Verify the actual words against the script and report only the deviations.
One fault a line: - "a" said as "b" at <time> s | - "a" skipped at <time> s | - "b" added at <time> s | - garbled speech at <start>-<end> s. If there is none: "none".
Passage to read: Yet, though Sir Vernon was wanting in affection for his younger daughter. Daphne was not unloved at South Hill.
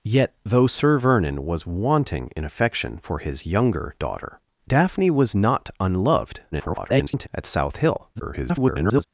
- garbled speech at 6.5-7.3 s
- garbled speech at 8.1-9.1 s